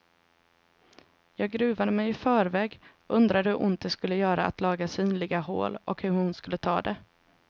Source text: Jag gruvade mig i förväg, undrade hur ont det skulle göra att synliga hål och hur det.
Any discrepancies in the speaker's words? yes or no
yes